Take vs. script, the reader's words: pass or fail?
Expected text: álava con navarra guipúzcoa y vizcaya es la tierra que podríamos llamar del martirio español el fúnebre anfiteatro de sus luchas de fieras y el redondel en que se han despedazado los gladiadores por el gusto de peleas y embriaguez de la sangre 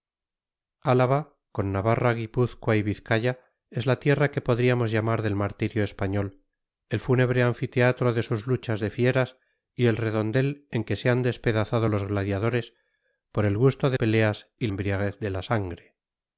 pass